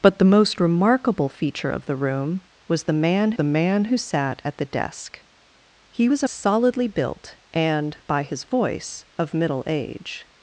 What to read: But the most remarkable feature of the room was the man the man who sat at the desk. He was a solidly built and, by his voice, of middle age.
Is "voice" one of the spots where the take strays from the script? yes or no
no